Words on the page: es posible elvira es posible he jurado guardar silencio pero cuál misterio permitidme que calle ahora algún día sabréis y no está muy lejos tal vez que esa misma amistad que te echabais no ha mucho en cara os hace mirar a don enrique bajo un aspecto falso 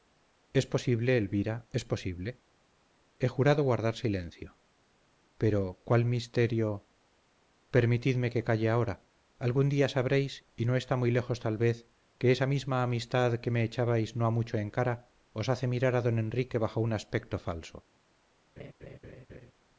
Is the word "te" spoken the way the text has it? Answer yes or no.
no